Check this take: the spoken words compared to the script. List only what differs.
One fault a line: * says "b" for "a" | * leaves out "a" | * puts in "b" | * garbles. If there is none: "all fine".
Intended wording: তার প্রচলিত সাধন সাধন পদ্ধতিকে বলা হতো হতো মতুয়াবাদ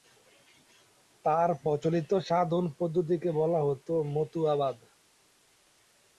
* leaves out "সাধন"
* leaves out "হতো"